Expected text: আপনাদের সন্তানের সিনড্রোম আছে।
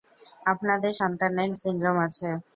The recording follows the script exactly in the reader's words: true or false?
true